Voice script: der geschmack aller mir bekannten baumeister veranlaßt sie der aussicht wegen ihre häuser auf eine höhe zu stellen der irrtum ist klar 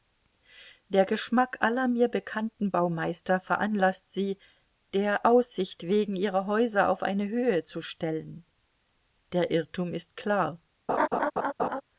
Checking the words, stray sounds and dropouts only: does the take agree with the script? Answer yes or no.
no